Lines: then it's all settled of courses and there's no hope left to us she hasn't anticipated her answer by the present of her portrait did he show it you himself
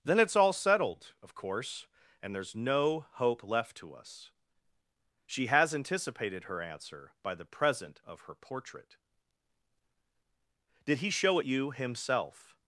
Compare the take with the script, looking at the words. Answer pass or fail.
fail